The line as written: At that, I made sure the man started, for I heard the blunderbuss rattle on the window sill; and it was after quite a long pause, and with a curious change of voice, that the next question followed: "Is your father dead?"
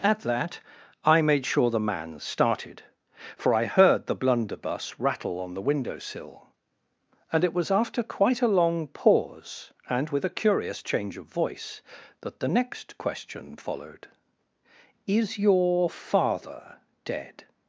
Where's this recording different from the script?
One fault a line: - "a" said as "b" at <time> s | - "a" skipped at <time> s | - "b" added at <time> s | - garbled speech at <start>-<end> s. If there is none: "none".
none